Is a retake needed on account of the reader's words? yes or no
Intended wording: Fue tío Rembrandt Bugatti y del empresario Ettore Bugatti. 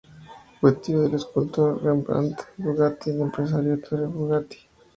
yes